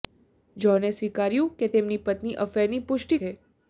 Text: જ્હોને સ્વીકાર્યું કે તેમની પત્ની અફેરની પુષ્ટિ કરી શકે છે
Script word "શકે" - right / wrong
wrong